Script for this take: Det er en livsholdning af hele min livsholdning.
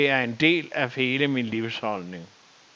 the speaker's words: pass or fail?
fail